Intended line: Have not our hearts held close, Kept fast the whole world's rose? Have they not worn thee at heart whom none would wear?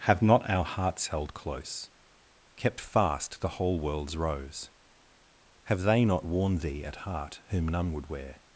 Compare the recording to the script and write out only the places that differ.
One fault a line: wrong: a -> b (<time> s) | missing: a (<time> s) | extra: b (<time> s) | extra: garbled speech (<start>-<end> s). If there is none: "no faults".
no faults